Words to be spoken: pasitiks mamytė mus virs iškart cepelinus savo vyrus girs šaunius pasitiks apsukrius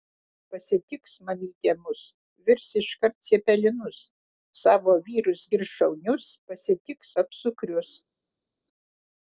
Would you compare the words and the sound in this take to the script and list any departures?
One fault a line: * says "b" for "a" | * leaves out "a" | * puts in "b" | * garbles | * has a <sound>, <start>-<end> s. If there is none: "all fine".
all fine